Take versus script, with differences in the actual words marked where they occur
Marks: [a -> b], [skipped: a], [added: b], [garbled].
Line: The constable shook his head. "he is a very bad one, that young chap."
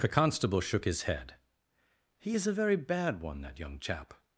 The constable shook his head. "he is a very bad one, that young chap."